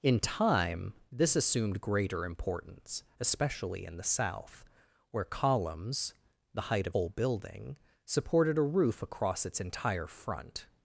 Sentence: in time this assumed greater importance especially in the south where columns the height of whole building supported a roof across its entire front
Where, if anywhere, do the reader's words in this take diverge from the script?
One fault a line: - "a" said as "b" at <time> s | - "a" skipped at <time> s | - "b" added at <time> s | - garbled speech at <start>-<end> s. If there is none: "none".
none